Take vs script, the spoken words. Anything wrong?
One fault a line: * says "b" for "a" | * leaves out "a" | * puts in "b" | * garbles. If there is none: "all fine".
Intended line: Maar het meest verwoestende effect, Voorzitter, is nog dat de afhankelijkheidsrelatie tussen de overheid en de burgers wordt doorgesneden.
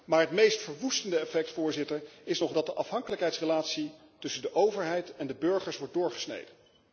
all fine